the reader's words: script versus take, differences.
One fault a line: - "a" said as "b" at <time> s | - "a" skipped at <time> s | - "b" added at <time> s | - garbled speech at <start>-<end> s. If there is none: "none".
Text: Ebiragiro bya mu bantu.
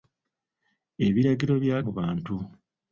none